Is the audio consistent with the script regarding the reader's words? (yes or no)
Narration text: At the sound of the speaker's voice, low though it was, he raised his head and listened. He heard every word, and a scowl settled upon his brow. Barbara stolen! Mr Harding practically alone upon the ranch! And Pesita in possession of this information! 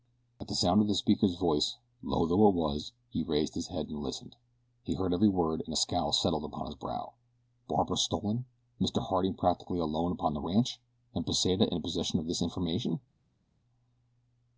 yes